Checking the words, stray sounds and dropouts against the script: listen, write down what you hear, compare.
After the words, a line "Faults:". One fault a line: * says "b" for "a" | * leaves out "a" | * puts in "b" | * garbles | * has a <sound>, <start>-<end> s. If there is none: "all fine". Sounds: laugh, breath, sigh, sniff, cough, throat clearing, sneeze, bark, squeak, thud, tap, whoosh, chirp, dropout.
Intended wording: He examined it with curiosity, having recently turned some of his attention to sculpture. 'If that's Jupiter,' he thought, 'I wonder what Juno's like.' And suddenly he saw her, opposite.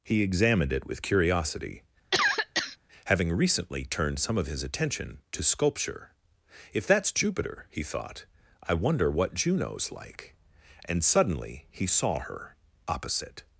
He examined it with curiosity, having recently turned some of his attention to sculpture. 'If that's Jupiter,' he thought, 'I wonder what Juno's like.' And suddenly he saw her, opposite.
Faults:
* has a cough, 2.1-2.8 s